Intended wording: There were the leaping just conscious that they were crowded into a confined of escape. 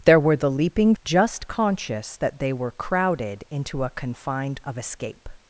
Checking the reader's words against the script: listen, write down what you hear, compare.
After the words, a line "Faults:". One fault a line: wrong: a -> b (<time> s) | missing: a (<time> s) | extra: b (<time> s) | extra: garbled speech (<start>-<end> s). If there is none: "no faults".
There were the leaping just conscious that they were crowded into a confined of escape.
Faults:
no faults